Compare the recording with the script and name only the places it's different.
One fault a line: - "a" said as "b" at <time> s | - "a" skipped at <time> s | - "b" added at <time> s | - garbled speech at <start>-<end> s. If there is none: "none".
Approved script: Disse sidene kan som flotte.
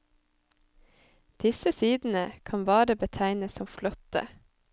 - "bare betegnes" added at 2.6 s